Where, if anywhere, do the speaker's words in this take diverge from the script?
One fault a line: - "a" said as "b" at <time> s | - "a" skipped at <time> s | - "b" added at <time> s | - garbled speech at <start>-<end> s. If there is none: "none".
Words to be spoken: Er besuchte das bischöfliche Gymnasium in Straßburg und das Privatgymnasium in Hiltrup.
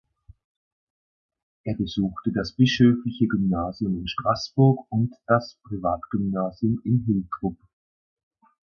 none